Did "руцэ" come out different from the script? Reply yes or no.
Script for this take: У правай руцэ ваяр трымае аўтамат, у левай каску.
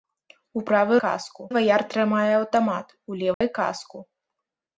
yes